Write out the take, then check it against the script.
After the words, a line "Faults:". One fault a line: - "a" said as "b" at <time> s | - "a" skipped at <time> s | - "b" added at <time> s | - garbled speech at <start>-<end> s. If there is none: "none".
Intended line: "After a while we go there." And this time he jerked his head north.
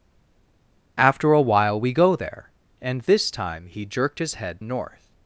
"After a while we go there." And this time he jerked his head north.
Faults:
none